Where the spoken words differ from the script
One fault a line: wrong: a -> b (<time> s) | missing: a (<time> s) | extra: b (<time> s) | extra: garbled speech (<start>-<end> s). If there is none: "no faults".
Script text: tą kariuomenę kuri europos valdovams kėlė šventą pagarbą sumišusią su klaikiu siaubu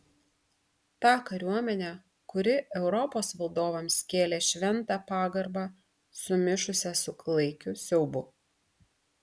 no faults